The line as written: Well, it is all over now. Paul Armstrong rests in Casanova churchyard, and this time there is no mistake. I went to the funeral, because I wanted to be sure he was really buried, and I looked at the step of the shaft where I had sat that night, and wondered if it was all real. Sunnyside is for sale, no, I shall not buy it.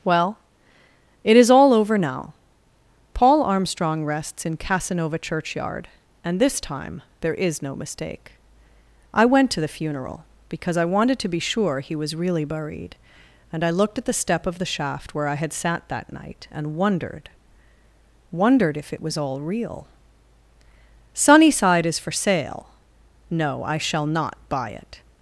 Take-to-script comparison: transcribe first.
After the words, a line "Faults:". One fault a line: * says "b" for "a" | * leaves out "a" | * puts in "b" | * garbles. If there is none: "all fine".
Well, it is all over now. Paul Armstrong rests in Casanova churchyard, and this time there is no mistake. I went to the funeral, because I wanted to be sure he was really buried, and I looked at the step of the shaft where I had sat that night, and wondered wondered if it was all real. Sunnyside is for sale, no, I shall not buy it.
Faults:
* puts in "wondered"